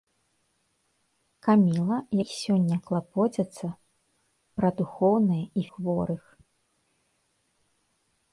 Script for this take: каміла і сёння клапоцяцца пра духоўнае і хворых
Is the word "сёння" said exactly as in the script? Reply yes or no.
yes